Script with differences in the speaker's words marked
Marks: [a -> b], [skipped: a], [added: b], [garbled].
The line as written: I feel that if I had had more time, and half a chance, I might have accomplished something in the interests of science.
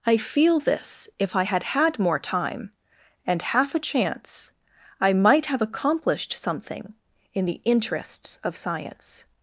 I feel [that -> this] if I had had more time, and half a chance, I might have accomplished something in the interests of science.